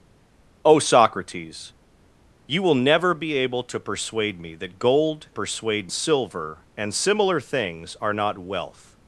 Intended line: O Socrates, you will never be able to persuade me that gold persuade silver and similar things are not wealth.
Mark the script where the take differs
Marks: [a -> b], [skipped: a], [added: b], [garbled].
O Socrates, you will never be able to persuade me that gold persuade silver and similar things are not wealth.